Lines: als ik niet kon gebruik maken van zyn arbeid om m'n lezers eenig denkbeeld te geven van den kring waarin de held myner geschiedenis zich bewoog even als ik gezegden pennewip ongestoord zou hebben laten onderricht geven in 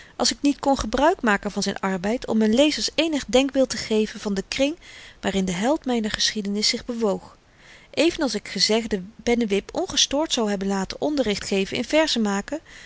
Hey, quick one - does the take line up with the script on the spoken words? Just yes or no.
yes